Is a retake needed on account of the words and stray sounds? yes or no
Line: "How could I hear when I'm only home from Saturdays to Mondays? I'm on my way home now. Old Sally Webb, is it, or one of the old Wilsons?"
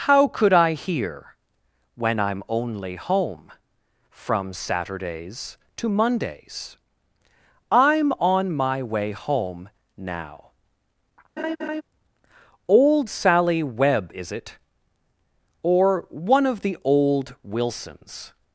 yes